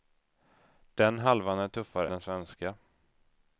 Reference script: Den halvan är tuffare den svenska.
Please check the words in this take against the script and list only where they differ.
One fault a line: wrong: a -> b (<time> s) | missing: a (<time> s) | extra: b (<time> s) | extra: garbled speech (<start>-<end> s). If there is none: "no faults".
no faults